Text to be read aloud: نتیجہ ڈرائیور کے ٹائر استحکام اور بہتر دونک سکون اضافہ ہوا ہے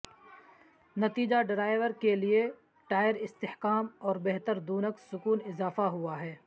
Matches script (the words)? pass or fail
fail